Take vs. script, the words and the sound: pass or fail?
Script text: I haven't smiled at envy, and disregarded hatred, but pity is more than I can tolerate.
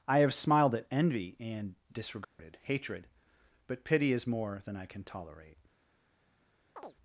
fail